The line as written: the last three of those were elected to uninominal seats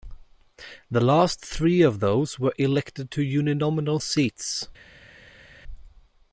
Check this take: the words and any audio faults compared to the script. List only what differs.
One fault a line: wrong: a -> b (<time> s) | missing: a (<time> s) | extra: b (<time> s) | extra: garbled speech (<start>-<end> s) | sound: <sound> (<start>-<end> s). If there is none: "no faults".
no faults